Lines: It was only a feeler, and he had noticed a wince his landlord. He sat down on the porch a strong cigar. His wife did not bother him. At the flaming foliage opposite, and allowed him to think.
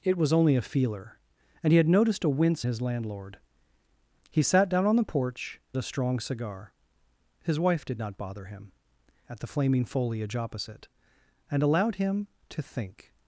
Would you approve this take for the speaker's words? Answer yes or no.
yes